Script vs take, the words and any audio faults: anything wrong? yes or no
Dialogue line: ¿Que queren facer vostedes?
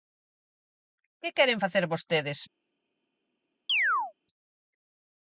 yes